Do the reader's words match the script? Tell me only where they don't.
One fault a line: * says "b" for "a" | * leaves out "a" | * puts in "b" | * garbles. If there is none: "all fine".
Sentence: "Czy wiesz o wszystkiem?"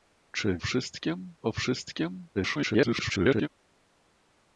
* says "wszystkiem" for "wiesz"
* garbles